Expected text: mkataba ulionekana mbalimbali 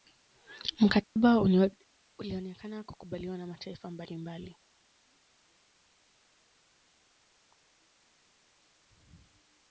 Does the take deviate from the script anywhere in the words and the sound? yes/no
yes